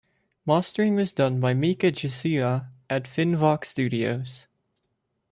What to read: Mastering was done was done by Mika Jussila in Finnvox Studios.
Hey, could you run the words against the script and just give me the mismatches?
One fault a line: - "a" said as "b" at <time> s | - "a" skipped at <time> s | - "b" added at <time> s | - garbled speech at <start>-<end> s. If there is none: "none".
- "was done" skipped at 1.4 s
- "in" said as "at" at 2.9 s